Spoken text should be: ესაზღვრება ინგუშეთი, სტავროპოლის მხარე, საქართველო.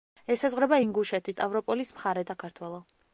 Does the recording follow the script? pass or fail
pass